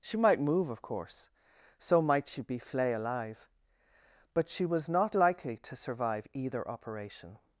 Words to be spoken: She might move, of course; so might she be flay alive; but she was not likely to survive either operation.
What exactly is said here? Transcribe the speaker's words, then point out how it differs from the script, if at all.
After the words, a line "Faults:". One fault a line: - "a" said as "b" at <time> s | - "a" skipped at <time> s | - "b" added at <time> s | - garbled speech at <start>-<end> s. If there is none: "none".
She might move, of course; so might she be flay alive; but she was not likely to survive either operation.
Faults:
none